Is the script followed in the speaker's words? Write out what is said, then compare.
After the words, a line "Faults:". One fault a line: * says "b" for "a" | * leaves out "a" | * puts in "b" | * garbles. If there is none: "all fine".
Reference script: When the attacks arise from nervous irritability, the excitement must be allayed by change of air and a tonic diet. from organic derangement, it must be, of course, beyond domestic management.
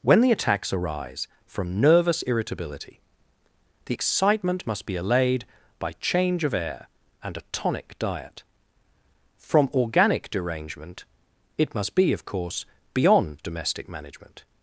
When the attacks arise from nervous irritability, the excitement must be allayed by change of air and a tonic diet. from organic derangement, it must be, of course, beyond domestic management.
Faults:
all fine